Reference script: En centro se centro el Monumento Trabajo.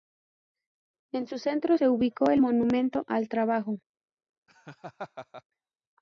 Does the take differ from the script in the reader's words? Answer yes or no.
yes